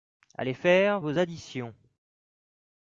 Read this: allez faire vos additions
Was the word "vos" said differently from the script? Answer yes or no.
no